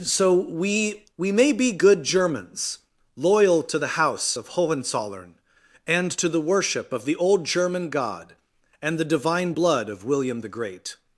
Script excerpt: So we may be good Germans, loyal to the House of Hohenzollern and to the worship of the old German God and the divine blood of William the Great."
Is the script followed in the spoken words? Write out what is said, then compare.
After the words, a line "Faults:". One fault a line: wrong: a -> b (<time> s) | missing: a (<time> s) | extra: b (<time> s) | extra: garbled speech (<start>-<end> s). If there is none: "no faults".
So we we may be good Germans, loyal to the House of Hohenzollern and to the worship of the old German God and the divine blood of William the Great."
Faults:
extra: we (1.2 s)